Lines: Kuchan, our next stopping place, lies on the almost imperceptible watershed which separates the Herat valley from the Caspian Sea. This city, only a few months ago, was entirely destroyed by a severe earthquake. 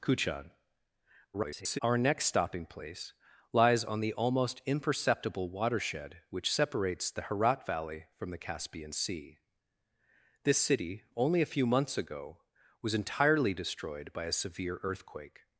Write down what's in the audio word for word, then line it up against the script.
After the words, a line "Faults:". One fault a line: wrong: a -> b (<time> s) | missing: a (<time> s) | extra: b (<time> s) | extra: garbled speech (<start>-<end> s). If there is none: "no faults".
Kuchan, [garbled] our next stopping place, lies on the almost imperceptible watershed which separates the Herat valley from the Caspian Sea. This city, only a few months ago, was entirely destroyed by a severe earthquake.
Faults:
extra: garbled speech (1.3-1.8 s)